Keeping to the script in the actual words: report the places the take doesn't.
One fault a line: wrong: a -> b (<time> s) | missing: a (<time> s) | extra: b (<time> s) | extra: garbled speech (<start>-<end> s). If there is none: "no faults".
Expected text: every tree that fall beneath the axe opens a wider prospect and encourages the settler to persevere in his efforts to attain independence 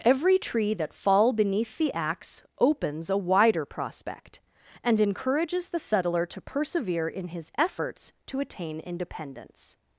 no faults